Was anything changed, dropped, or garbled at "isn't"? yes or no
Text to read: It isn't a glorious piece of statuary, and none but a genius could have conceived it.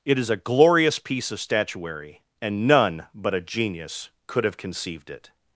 yes